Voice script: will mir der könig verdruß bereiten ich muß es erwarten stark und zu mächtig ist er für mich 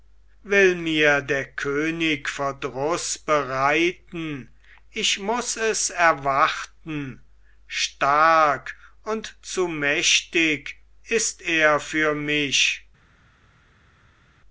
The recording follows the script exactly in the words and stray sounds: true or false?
true